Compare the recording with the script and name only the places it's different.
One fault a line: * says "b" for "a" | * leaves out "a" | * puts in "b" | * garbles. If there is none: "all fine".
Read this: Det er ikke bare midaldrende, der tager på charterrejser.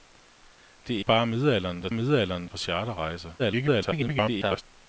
* leaves out "ikke"
* says "midaldrende" for "tager"
* garbles